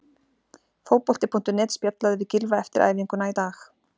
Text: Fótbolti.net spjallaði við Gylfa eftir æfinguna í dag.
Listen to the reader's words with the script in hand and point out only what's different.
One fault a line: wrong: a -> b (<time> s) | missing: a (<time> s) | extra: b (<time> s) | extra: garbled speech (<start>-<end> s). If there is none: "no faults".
no faults